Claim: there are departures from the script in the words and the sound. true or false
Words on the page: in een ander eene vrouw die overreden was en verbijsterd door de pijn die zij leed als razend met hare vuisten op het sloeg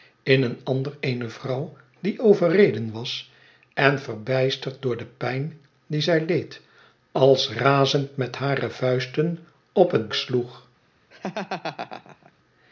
true